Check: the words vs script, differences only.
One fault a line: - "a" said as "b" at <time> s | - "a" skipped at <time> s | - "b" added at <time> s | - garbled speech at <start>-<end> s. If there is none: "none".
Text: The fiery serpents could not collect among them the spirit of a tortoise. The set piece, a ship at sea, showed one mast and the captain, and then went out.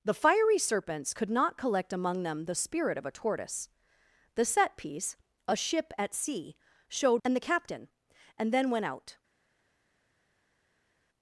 - "one mast" skipped at 7.2 s